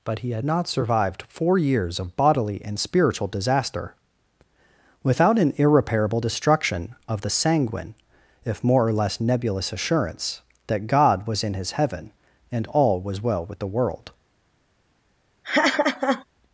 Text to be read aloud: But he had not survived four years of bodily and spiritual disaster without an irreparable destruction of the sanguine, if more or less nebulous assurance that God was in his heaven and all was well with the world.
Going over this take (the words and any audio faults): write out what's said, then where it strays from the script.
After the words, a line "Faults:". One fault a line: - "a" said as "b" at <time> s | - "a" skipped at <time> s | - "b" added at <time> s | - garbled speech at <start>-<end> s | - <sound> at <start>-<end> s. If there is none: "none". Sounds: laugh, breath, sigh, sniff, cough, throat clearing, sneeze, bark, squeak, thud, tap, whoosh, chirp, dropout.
But he had not survived four years of bodily and spiritual disaster without an irreparable destruction of the sanguine, if more or less nebulous assurance that God was in his heaven and all was well with the world.
Faults:
- laugh at 15.4-16.2 s